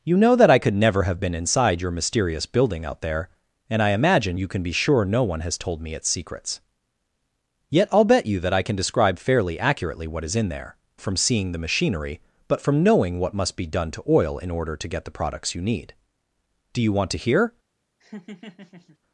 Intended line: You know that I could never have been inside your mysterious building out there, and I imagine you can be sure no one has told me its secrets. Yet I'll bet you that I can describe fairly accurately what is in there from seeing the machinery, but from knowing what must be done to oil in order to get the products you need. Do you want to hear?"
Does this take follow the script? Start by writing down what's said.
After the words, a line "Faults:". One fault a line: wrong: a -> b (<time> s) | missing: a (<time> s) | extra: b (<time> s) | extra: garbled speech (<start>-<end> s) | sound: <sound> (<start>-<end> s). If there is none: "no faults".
You know that I could never have been inside your mysterious building out there, and I imagine you can be sure no one has told me its secrets. Yet I'll bet you that I can describe fairly accurately what is in there from seeing the machinery, but from knowing what must be done to oil in order to get the products you need. Do you want to hear?"
Faults:
sound: laugh (18.0-19.0 s)